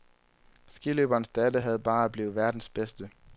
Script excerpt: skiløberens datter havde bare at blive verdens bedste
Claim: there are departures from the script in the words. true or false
false